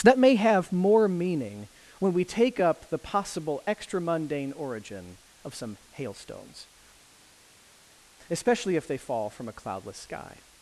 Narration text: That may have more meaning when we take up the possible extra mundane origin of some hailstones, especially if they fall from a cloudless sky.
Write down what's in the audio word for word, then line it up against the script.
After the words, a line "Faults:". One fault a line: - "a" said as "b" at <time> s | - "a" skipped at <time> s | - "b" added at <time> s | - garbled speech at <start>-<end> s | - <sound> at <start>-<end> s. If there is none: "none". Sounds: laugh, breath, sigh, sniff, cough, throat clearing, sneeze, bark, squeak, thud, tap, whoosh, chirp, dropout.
That may have more meaning when we take up the possible extra mundane origin of some hailstones, especially if they fall from a cloudless sky.
Faults:
none